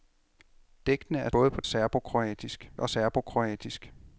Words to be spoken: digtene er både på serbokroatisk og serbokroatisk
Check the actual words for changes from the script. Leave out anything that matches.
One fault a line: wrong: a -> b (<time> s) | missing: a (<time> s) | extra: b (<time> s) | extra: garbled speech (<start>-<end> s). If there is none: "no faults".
no faults